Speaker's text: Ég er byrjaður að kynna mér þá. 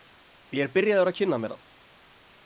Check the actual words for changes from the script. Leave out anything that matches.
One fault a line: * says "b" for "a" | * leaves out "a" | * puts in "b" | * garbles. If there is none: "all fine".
all fine